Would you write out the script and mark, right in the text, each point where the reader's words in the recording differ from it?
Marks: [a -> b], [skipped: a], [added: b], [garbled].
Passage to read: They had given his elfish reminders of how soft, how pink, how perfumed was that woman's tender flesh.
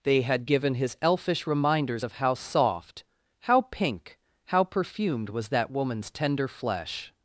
They had given his elfish reminders of how soft, how pink, how perfumed was that woman's tender flesh.